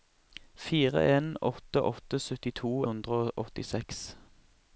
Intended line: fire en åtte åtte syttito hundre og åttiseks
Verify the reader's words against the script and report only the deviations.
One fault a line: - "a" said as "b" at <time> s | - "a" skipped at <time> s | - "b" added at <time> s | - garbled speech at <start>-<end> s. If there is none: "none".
none